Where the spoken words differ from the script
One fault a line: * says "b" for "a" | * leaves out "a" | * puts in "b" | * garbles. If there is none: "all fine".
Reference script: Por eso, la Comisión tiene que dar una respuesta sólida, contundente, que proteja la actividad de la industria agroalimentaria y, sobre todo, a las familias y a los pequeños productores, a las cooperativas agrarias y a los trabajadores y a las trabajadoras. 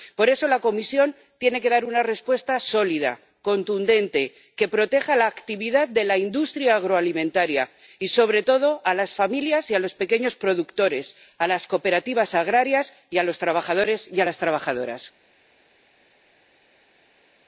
all fine